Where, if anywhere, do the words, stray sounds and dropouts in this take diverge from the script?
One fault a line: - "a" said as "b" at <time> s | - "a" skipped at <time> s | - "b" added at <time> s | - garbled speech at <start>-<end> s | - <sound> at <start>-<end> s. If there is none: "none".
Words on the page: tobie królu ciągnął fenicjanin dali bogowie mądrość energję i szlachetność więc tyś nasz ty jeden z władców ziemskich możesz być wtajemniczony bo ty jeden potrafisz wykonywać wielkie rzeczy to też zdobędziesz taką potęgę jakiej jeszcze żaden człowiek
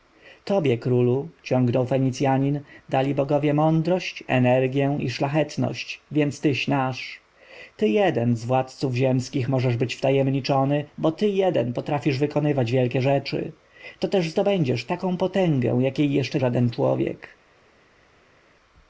none